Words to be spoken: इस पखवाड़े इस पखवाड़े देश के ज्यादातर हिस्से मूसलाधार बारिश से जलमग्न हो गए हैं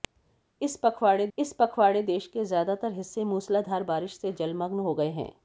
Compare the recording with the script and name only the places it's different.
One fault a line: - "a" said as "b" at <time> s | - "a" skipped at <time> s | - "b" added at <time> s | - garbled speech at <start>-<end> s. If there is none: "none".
none